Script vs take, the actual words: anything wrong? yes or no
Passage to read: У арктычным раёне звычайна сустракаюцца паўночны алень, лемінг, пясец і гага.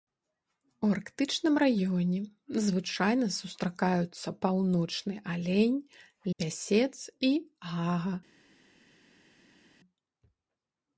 yes